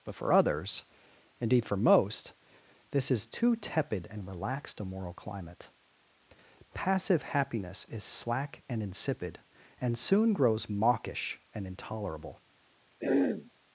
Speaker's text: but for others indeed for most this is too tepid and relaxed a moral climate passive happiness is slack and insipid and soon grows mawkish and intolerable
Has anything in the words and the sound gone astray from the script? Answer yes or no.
yes